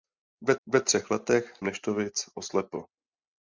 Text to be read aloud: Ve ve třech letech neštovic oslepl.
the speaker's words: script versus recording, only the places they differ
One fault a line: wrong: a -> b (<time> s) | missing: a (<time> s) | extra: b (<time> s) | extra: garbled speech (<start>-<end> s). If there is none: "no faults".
no faults